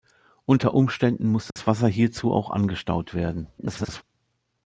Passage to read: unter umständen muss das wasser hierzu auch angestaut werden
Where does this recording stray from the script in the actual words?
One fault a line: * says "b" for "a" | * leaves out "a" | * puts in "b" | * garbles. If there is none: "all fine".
* garbles